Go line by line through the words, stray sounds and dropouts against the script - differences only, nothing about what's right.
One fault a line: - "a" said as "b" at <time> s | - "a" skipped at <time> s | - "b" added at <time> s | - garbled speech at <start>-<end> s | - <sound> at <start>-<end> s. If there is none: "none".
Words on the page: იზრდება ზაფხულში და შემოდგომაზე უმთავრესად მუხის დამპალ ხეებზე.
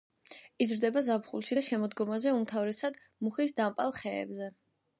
none